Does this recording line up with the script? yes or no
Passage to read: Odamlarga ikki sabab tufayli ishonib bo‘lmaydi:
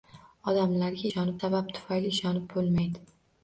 no